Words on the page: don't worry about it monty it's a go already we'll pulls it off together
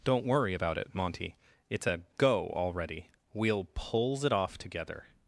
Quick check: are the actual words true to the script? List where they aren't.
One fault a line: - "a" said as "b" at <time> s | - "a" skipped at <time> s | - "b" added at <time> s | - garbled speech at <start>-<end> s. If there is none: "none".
none